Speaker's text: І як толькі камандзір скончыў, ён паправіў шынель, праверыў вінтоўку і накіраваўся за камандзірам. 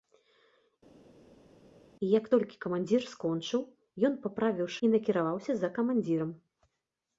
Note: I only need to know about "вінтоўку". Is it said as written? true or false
false